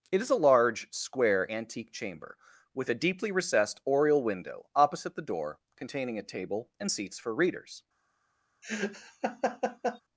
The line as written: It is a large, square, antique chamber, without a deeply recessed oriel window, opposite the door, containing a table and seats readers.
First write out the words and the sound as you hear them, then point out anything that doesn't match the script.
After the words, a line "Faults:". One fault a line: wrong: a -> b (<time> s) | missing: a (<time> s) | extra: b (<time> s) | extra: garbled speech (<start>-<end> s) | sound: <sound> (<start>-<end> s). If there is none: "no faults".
It is a large, square, antique chamber, with a deeply recessed oriel window, opposite the door, containing a table and seats for readers.
Faults:
wrong: without -> with (2.7 s)
extra: for (7.2 s)
sound: laugh (8.6-10.0 s)